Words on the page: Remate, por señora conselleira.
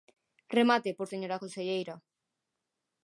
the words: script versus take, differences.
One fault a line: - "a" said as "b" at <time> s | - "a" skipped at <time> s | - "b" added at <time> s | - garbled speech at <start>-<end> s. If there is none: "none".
none